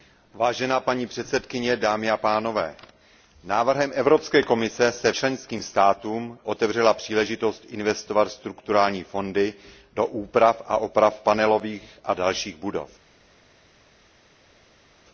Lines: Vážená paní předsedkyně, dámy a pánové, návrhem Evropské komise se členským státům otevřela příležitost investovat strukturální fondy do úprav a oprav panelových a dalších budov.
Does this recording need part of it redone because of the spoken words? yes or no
no